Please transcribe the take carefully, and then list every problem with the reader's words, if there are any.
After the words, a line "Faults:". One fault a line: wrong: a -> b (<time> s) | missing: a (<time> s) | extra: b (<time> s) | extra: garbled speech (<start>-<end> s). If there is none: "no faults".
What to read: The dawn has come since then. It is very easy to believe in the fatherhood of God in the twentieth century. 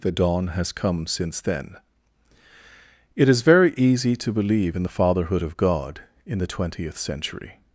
The dawn has come since then. It is very easy to believe in the fatherhood of God in the twentieth century.
Faults:
no faults